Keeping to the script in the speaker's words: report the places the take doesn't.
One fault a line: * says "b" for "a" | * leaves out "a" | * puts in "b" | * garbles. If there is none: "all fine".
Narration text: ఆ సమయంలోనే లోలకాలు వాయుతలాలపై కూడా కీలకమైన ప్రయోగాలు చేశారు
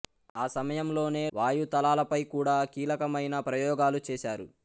* leaves out "లోలకాలు"